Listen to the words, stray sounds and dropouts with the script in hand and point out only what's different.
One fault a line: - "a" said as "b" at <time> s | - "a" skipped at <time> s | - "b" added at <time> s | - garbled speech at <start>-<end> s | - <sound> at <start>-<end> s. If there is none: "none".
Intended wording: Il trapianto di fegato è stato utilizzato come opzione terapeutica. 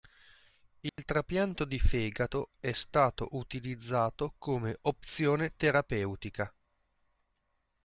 - dropout at 0.9-1.0 s